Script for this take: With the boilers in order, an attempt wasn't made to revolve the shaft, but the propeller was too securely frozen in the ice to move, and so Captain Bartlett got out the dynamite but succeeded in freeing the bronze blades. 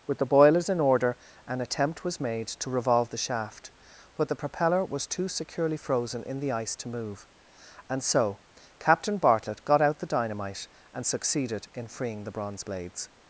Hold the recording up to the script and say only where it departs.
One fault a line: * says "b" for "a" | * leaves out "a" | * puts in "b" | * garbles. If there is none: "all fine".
* says "was" for "wasn't"
* says "and" for "but"